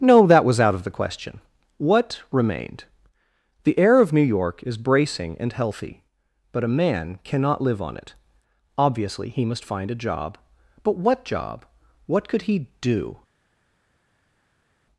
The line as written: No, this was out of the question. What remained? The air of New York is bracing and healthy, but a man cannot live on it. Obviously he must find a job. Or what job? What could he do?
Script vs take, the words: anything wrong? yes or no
yes